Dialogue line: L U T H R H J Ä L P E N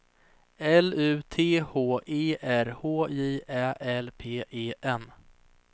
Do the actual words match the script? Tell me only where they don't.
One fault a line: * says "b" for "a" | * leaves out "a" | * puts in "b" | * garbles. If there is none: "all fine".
* puts in "E"